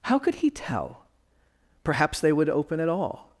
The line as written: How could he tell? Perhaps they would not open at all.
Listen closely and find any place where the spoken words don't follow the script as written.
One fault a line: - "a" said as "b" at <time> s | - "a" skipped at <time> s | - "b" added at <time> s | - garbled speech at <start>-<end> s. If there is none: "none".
- "not" skipped at 2.5 s